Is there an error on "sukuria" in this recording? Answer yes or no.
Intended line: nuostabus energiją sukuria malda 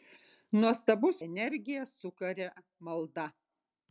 no